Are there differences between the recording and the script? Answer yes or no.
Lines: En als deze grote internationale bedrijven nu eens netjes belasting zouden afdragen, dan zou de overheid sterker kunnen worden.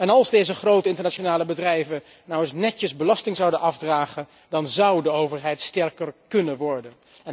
no